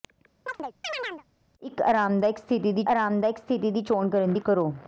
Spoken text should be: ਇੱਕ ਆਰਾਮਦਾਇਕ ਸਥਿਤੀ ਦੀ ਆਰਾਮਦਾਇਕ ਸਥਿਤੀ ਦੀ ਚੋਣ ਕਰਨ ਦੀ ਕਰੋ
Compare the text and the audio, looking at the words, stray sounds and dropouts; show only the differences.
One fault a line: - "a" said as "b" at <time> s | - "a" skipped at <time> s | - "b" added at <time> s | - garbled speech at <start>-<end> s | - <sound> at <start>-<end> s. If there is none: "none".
- chirp at 0.5-1.2 s